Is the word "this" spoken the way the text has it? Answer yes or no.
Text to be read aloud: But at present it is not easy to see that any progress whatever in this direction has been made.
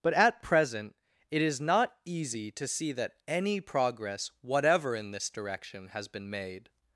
yes